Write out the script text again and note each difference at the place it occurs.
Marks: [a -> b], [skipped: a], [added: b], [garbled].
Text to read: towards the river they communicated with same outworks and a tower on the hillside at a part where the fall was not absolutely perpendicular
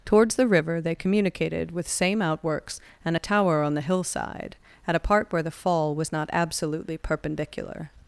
towards the river they communicated with same outworks and a tower on the hillside at a part where the fall was not absolutely perpendicular